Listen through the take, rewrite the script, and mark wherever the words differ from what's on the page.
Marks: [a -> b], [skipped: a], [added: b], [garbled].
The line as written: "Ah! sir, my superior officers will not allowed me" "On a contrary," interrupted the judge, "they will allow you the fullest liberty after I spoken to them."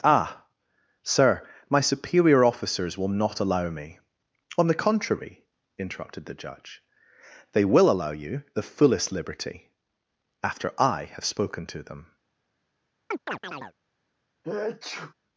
"Ah! sir, my superior officers will not [allowed -> allow] me" "On [a -> the] contrary," interrupted the judge, "they will allow you the fullest liberty after I [added: have] spoken to them."